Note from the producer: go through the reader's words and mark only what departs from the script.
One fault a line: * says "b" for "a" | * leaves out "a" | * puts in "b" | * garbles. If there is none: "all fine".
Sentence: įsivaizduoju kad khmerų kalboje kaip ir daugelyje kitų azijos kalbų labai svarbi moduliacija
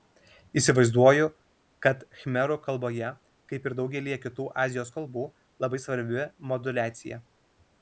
all fine